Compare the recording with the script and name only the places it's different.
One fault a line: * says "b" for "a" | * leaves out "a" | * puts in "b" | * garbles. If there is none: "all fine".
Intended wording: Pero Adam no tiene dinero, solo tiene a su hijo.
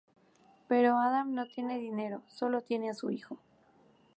all fine